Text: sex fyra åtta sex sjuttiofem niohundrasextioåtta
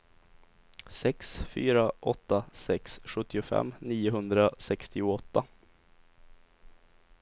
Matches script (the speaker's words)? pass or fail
pass